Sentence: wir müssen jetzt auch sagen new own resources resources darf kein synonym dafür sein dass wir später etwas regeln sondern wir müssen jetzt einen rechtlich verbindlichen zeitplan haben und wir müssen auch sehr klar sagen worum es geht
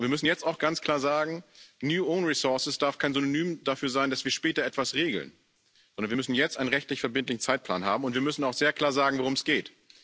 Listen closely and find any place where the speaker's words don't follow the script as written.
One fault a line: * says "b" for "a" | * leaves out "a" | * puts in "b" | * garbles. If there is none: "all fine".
* puts in "ganz klar"
* leaves out "resources"